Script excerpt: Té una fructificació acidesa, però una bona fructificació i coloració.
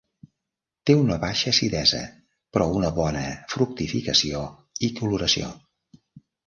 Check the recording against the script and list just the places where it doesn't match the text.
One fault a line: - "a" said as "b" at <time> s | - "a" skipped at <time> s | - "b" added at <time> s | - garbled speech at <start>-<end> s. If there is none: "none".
- "fructificació" said as "baixa" at 1.2 s